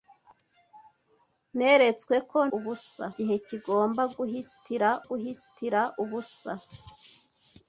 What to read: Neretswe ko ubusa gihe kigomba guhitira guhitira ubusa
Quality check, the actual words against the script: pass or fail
pass